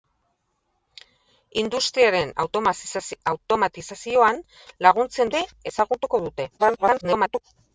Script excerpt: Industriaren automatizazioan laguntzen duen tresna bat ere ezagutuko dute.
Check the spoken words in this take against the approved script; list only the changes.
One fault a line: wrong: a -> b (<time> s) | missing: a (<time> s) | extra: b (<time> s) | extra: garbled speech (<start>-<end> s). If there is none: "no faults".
missing: duen tresna bat (5.3 s)
extra: garbled speech (6.6-7.4 s)